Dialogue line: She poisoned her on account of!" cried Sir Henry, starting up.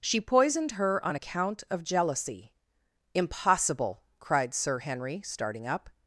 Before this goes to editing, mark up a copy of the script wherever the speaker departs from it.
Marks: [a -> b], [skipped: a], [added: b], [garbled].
She poisoned her on account of!" [added: jealousy Impossible] cried Sir Henry, starting up.